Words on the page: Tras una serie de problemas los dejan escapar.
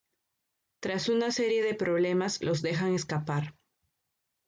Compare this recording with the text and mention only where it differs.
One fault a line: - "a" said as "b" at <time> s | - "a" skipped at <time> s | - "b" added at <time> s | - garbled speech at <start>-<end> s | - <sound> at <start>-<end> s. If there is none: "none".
none